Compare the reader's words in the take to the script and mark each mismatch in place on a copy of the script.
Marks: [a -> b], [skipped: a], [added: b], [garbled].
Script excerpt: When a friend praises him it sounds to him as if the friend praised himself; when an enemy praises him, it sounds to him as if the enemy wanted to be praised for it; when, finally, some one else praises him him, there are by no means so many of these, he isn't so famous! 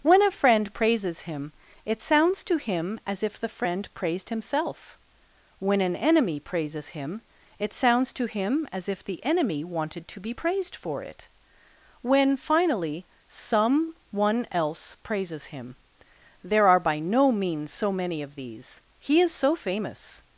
When a friend praises him it sounds to him as if the friend praised himself; when an enemy praises him, it sounds to him as if the enemy wanted to be praised for it; when, finally, some one else praises him [skipped: him,] there are by no means so many of these, he [isn't -> is] so famous!